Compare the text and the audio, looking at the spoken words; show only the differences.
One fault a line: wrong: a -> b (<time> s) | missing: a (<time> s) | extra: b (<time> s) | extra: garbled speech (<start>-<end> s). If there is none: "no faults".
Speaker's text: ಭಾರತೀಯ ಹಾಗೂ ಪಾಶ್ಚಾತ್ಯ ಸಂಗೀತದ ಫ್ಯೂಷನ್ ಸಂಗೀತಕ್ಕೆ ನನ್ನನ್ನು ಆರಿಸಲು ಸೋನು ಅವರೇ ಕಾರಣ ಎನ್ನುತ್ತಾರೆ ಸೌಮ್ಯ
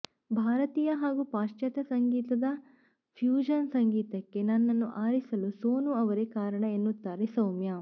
no faults